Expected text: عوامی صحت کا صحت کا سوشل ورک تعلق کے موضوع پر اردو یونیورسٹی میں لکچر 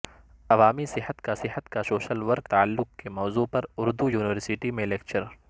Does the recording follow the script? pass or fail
pass